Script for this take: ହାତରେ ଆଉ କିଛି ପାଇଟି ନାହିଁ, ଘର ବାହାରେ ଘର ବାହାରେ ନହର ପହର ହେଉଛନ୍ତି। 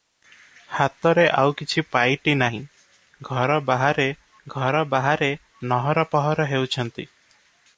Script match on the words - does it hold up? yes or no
yes